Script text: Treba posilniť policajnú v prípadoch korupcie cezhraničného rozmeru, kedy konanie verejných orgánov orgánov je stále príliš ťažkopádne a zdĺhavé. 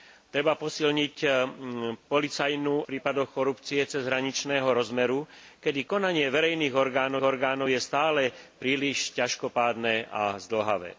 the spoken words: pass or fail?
pass